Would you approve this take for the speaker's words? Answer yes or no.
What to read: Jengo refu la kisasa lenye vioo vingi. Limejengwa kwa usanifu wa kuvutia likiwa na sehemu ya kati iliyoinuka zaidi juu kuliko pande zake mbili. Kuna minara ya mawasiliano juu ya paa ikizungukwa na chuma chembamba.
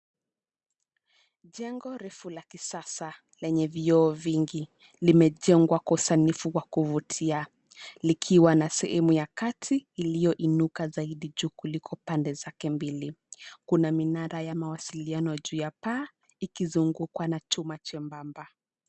yes